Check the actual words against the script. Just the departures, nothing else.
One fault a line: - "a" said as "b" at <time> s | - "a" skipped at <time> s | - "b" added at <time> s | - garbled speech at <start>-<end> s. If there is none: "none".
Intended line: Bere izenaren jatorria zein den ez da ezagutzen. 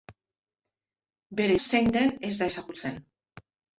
- "izenaren jatorria" skipped at 1.6 s